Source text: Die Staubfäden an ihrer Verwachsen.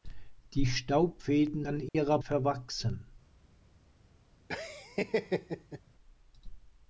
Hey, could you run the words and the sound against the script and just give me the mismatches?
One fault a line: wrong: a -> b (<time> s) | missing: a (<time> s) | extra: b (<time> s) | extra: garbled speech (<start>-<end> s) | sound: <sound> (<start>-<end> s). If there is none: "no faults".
sound: dropout (1.9-1.9 s)
sound: laugh (4.5-5.8 s)